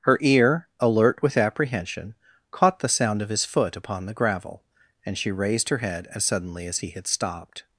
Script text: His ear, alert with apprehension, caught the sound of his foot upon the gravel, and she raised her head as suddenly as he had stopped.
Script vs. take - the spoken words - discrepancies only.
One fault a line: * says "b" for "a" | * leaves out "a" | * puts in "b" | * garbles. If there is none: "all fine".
* says "Her" for "His"